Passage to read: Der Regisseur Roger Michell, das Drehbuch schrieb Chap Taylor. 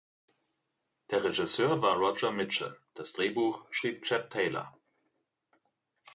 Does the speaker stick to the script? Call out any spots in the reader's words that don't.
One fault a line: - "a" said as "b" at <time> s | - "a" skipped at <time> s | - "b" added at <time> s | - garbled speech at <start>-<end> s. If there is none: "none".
- "war" added at 1.8 s